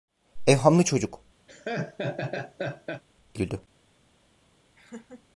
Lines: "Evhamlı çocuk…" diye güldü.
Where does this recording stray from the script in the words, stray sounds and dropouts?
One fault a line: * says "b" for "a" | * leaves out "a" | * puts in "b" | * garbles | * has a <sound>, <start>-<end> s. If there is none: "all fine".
* leaves out "diye"
* has a laugh, 1.5-3.0 s
* has a laugh, 4.8-5.2 s